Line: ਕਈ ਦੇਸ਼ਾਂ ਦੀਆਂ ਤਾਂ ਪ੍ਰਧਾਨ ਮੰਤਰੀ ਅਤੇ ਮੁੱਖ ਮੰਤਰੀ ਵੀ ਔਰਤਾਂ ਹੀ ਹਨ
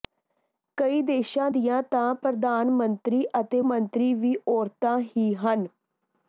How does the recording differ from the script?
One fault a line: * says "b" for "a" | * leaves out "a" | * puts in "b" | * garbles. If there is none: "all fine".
* leaves out "ਮੁੱਖ"